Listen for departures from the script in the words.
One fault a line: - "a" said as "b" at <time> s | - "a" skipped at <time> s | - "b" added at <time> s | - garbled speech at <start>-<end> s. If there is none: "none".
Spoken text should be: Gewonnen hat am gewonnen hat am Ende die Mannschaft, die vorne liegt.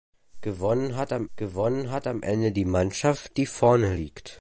none